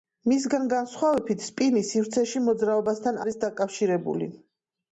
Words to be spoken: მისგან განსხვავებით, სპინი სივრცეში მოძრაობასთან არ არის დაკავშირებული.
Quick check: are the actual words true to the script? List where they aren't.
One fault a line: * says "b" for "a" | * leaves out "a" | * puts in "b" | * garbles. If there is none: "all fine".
* leaves out "არ"